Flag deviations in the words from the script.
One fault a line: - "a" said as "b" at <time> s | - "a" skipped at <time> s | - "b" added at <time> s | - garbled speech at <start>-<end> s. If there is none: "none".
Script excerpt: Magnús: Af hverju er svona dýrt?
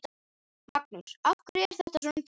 - "þetta" added at 1.8 s